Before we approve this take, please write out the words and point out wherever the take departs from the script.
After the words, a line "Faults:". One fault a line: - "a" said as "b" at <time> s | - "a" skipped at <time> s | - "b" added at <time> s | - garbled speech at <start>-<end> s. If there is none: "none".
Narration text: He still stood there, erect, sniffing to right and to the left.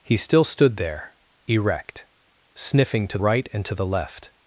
He still stood there, erect, sniffing to right and to the left.
Faults:
none